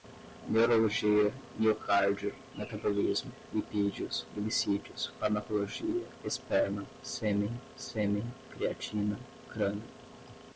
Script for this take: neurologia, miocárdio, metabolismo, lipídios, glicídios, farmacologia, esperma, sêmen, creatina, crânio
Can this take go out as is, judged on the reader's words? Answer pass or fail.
fail